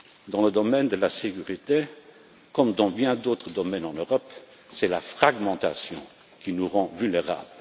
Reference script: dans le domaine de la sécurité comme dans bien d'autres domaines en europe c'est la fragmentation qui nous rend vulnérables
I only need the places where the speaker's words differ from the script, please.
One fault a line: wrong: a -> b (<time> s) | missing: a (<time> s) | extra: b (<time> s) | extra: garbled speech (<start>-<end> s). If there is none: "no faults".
no faults